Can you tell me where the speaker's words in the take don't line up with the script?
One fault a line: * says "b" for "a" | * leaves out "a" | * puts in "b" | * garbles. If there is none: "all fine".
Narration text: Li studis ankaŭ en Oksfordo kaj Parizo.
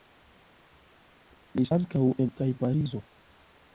* leaves out "studis"
* leaves out "Oksfordo"